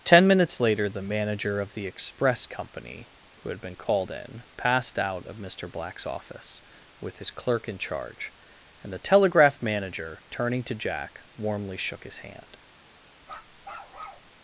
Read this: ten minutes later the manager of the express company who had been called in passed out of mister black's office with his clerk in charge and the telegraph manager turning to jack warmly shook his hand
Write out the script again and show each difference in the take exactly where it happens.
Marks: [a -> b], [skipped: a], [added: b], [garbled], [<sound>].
ten minutes later the manager of the express company who had been called in passed out of mister black's office with his clerk in charge and the telegraph manager turning to jack warmly shook his hand [bark]